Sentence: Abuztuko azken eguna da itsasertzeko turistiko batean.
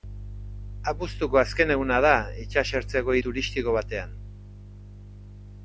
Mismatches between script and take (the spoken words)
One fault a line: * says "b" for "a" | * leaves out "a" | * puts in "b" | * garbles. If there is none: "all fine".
all fine